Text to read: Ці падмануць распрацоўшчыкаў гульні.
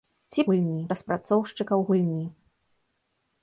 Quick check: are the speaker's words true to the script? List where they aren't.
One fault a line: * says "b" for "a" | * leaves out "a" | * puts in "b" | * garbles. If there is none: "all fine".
* says "гульні" for "падмануць"